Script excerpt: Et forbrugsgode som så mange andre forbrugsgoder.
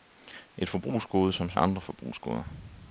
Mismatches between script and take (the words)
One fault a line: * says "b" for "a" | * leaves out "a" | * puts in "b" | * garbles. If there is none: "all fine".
* leaves out "mange"